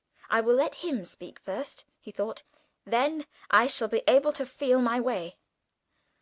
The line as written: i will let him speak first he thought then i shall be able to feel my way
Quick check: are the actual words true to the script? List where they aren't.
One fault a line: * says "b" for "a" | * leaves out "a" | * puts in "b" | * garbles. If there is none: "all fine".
all fine